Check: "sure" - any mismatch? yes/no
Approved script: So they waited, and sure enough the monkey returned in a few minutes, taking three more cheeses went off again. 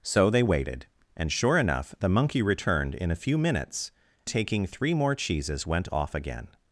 no